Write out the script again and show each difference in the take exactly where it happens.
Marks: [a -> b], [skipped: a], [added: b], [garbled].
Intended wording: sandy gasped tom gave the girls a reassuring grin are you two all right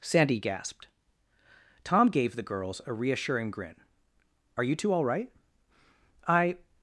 sandy gasped tom gave the girls a reassuring grin are you two all right [added: i]